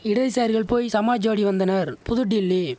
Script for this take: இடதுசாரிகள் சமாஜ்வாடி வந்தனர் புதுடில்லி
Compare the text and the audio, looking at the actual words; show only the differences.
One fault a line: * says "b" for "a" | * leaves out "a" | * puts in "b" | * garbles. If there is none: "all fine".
* puts in "போய்"